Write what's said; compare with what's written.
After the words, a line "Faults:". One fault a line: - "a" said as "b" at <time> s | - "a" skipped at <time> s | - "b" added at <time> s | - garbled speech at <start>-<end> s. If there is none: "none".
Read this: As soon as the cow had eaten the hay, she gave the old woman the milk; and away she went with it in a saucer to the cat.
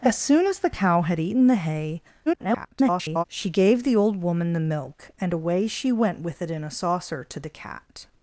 As soon as the cow had eaten the hay, [garbled] she gave the old woman the milk; and away she went with it in a saucer to the cat.
Faults:
- garbled speech at 2.3-3.2 s